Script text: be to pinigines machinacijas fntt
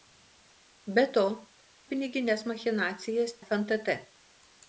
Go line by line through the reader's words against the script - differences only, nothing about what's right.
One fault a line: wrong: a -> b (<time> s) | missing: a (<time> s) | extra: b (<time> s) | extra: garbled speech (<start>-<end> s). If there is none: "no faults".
no faults